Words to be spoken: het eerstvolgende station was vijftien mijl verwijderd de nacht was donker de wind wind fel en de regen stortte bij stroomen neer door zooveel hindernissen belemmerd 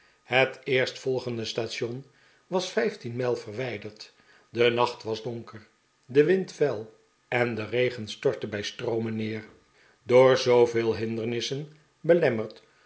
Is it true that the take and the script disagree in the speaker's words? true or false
true